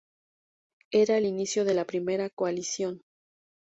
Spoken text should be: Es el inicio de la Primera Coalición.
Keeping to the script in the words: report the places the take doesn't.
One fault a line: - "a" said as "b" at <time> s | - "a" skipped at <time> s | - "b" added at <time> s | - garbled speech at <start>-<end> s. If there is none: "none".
- "Es" said as "Era" at 0.9 s